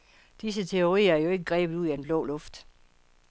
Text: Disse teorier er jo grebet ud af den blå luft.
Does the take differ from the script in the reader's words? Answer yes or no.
yes